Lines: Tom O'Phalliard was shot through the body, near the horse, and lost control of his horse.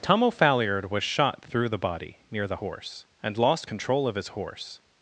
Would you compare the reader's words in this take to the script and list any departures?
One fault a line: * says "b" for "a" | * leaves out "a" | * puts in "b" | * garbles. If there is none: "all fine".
all fine